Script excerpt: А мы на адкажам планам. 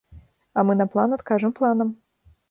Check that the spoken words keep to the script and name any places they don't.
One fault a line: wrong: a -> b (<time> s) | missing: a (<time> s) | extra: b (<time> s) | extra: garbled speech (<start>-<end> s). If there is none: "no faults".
extra: план (0.9 s)